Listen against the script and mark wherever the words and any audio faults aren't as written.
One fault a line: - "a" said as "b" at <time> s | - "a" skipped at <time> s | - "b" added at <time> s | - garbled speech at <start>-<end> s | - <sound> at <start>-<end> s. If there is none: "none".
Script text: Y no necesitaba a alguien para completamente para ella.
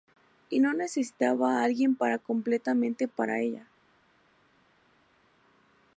none